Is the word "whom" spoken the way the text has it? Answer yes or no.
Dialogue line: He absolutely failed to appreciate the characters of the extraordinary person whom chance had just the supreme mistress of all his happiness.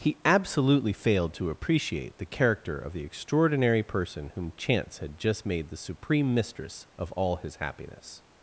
yes